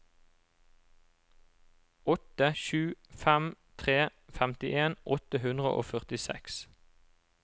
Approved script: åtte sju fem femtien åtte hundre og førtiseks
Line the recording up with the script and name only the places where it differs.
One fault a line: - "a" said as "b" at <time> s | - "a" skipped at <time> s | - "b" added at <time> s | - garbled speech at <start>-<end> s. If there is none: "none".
- "tre" added at 3.8 s